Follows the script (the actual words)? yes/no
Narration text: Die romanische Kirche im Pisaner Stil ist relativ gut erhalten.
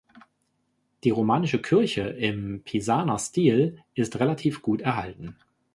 yes